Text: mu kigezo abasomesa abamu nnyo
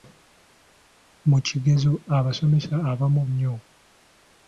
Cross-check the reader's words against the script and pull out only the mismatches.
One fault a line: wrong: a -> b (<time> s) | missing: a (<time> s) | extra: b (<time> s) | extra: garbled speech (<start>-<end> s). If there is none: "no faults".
no faults